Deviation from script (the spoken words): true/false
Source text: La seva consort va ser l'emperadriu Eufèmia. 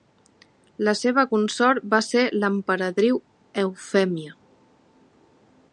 false